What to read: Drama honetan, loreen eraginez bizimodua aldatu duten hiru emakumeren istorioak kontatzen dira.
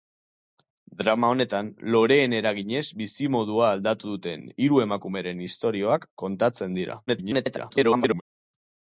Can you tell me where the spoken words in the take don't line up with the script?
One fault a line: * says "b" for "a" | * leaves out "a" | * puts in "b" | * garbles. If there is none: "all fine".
* garbles